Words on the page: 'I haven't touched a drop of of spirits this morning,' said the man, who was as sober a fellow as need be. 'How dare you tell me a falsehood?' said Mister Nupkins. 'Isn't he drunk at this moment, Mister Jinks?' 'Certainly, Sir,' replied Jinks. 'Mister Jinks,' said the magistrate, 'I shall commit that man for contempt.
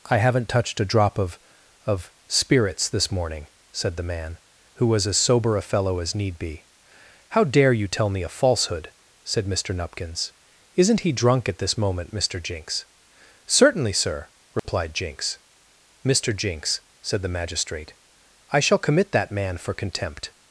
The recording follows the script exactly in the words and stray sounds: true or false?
false